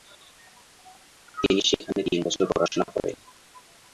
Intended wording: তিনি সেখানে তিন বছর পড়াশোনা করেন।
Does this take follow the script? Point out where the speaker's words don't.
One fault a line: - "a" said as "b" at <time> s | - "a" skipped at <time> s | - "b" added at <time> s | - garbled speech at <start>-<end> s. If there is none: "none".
none